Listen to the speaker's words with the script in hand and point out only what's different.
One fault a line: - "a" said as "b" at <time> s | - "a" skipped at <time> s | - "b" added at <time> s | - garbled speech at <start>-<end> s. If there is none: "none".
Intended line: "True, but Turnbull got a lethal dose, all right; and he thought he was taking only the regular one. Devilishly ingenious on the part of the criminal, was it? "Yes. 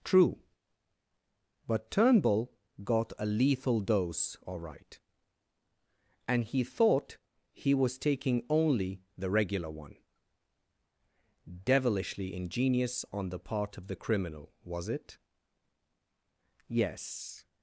none